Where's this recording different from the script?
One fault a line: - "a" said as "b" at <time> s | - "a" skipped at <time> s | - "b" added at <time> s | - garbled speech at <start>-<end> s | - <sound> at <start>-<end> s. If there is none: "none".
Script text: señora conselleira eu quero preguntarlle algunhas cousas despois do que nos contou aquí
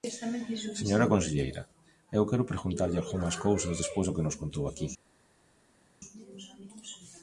none